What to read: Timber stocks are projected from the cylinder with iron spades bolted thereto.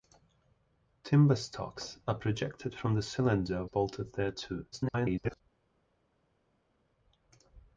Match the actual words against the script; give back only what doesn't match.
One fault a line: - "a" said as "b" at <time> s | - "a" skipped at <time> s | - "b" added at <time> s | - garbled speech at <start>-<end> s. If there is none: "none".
- "with iron spades" skipped at 3.6 s
- garbled speech at 4.7-5.4 s